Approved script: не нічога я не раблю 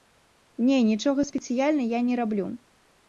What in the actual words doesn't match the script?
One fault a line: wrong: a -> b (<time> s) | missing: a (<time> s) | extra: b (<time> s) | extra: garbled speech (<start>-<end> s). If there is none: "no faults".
extra: спецыяльна (1.3 s)